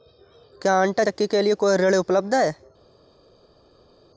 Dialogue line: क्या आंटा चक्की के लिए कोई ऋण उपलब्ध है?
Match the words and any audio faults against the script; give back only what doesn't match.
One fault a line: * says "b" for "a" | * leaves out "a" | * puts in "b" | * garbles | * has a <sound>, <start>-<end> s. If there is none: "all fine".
all fine